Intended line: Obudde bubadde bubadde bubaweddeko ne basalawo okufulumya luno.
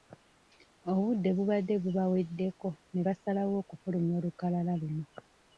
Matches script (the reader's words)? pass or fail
fail